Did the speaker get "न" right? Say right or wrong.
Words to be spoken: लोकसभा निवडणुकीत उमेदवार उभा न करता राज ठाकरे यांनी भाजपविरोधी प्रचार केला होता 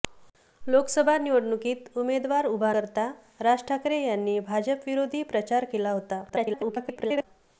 wrong